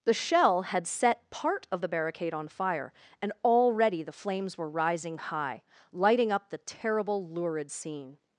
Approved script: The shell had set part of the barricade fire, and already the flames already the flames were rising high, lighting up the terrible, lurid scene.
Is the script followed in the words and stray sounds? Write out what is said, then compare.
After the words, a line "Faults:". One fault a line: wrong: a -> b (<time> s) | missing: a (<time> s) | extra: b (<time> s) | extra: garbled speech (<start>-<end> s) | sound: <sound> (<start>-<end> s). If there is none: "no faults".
The shell had set part of the barricade on fire, and already the flames were rising high, lighting up the terrible, lurid scene.
Faults:
extra: on (2.3 s)
missing: already the flames (4.6 s)